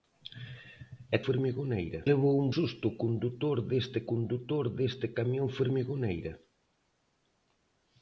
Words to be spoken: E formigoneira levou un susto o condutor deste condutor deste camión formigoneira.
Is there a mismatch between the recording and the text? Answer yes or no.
no